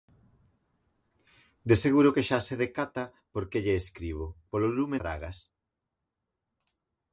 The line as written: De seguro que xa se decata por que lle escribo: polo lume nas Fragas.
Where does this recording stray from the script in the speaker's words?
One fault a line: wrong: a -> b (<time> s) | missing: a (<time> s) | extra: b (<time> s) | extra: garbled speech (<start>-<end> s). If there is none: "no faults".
missing: nas (5.0 s)